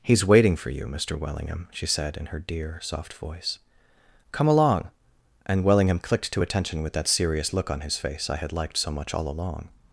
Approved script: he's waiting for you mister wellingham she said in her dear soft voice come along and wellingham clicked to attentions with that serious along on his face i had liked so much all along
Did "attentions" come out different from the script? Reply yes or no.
yes